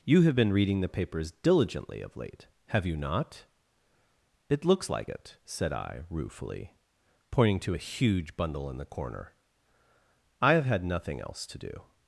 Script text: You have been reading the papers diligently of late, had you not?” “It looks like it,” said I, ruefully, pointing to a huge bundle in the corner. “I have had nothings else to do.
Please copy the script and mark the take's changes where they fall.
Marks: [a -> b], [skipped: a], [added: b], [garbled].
You have been reading the papers diligently of late, [had -> have] you not?” “It looks like it,” said I, ruefully, pointing to a huge bundle in the corner. “I have had [nothings -> nothing] else to do.